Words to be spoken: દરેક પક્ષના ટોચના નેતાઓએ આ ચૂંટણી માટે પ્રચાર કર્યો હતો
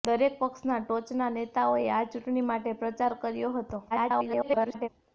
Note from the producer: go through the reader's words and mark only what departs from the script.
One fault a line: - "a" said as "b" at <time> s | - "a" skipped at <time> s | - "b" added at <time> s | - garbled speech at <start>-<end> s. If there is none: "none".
- garbled speech at 3.9-4.9 s